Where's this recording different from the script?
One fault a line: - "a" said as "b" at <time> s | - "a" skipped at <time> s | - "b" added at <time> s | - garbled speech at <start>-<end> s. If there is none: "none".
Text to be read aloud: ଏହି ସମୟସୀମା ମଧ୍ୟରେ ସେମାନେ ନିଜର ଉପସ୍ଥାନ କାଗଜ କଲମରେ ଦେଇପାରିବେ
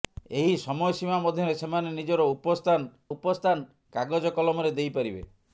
- "ଉପସ୍ଥାନ" added at 3.1 s